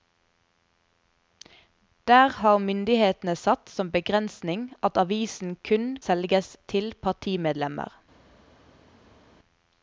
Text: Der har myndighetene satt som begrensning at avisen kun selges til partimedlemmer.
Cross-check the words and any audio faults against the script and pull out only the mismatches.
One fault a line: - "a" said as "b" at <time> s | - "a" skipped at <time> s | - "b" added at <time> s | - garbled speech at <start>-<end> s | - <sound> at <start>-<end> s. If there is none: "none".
none